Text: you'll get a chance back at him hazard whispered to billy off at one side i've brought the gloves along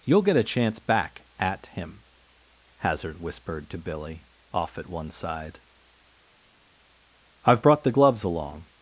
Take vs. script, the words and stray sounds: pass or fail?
pass